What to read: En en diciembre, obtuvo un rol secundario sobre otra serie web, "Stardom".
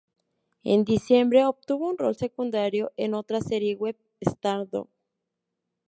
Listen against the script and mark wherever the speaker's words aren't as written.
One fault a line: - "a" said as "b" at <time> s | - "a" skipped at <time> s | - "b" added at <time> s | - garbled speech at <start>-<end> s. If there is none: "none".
- "en" skipped at 0.8 s
- "sobre" said as "en" at 3.0 s